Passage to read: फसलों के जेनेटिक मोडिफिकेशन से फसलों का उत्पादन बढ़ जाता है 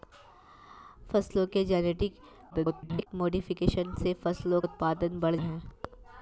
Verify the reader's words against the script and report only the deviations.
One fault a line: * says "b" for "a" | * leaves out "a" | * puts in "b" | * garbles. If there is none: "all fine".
* garbles
* leaves out "का"
* leaves out "जाता"